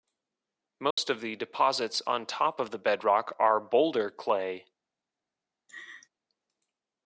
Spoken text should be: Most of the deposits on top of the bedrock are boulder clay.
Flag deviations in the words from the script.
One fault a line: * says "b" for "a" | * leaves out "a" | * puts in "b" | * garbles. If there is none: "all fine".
all fine